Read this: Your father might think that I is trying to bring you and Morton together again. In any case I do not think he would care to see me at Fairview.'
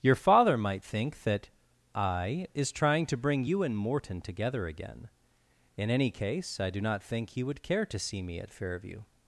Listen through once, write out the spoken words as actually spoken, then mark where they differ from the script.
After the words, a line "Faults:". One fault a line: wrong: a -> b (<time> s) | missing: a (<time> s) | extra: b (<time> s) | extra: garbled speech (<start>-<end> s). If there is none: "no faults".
Your father might think that I is trying to bring you and Morton together again. In any case I do not think he would care to see me at Fairview.'
Faults:
no faults